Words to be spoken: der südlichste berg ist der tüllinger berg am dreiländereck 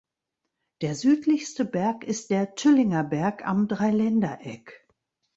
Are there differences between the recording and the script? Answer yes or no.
no